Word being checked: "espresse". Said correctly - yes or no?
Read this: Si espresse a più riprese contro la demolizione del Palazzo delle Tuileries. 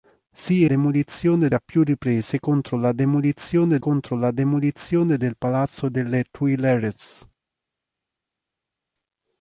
no